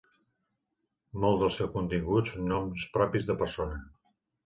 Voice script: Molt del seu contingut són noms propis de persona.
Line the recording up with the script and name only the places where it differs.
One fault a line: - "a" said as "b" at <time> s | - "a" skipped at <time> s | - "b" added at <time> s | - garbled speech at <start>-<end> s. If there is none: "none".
none